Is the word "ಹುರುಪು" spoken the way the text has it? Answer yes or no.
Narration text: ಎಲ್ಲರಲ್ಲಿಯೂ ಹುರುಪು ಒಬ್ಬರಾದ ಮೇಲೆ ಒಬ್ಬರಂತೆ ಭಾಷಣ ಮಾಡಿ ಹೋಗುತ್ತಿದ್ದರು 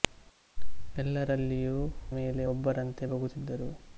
no